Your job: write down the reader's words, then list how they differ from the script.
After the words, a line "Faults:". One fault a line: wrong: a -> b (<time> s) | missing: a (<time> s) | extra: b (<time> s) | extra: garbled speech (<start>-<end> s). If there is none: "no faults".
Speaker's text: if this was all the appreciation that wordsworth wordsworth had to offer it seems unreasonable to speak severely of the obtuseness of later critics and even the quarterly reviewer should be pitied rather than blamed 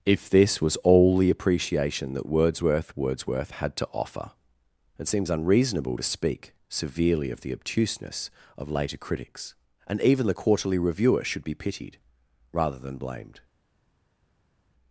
if this was all the appreciation that wordsworth wordsworth had to offer it seems unreasonable to speak severely of the obtuseness of later critics and even the quarterly reviewer should be pitied rather than blamed
Faults:
no faults